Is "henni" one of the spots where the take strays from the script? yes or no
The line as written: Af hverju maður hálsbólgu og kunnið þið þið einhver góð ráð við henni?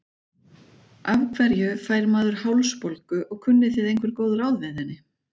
no